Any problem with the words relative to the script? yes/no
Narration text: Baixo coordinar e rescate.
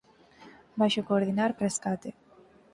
no